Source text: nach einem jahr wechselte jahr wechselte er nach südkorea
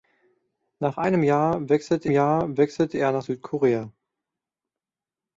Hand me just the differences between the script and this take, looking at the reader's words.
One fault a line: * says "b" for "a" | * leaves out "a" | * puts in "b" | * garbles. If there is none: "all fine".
all fine